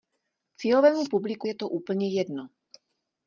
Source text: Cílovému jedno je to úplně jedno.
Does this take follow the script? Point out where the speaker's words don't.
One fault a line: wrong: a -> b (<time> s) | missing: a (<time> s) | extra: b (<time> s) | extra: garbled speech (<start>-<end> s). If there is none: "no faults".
wrong: jedno -> publiku (1.1 s)